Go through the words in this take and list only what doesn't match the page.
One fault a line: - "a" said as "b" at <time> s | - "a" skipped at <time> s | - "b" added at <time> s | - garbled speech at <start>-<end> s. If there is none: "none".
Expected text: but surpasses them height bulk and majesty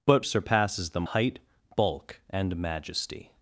none